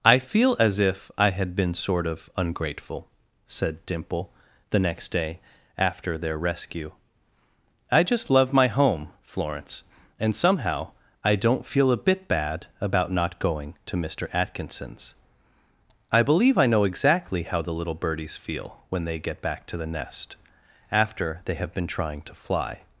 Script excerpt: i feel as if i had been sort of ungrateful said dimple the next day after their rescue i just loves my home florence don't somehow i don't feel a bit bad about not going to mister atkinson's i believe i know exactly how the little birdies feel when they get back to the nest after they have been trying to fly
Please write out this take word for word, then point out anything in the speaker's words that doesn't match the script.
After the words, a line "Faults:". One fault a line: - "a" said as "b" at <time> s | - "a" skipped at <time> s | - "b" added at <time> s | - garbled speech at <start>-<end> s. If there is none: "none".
i feel as if i had been sort of ungrateful said dimple the next day after their rescue i just love my home florence and somehow i don't feel a bit bad about not going to mister atkinson's i believe i know exactly how the little birdies feel when they get back to the nest after they have been trying to fly
Faults:
- "loves" said as "love" at 8.3 s
- "don't" said as "and" at 10.2 s